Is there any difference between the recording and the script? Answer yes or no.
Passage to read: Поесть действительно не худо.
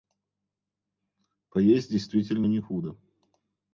no